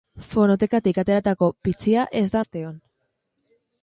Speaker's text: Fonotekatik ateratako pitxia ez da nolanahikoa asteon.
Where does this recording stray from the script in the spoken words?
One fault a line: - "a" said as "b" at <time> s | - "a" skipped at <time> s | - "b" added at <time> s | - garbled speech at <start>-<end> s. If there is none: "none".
- "nolanahikoa" skipped at 2.4 s